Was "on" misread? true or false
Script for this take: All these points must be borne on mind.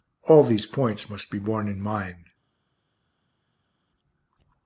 true